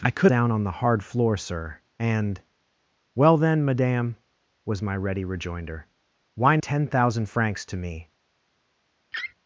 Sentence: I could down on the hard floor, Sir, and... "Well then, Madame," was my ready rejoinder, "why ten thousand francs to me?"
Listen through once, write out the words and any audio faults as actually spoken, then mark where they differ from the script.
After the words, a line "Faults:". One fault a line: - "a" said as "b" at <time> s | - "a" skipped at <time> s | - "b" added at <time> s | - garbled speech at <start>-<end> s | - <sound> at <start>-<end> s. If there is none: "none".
I could down on the hard floor, Sir, and... "Well then, Madame," was my ready rejoinder, "why ten thousand francs to me?"
Faults:
- laugh at 9.1-9.3 s